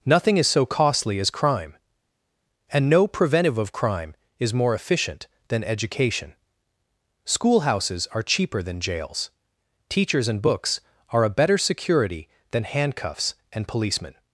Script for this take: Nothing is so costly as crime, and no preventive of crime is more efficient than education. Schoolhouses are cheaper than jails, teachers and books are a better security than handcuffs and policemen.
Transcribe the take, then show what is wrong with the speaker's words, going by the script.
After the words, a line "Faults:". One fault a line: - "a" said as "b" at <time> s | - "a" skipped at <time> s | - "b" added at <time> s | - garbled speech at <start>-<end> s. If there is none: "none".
Nothing is so costly as crime, and no preventive of crime is more efficient than education. Schoolhouses are cheaper than jails, teachers and books are a better security than handcuffs and policemen.
Faults:
none